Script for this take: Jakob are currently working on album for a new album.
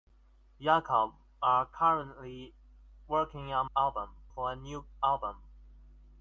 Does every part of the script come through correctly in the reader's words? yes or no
yes